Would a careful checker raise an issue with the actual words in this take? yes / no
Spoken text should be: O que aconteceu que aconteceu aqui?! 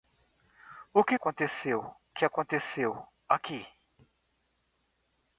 no